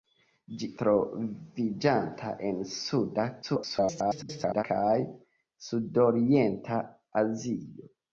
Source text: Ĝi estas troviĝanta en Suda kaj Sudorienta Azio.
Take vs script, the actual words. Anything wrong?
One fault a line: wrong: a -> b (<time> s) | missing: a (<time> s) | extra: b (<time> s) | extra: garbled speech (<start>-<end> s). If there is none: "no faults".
missing: estas (0.7 s)
extra: garbled speech (3.4-4.6 s)